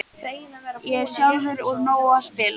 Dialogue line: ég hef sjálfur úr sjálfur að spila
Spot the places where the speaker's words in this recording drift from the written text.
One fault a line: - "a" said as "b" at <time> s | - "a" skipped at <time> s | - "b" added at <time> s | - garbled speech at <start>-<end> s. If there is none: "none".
- "sjálfur" said as "nógu" at 1.9 s